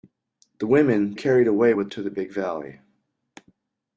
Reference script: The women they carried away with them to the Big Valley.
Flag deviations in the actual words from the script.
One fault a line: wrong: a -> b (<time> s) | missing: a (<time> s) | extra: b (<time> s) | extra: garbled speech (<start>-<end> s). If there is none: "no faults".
missing: they (1.1 s)
missing: them (1.9 s)